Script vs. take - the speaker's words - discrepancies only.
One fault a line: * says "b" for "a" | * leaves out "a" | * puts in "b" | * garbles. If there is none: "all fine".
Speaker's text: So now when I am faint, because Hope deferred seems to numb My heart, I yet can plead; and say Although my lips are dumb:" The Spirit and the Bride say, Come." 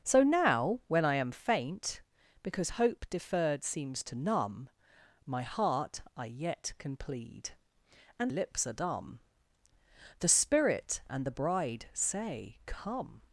* leaves out "say Although my"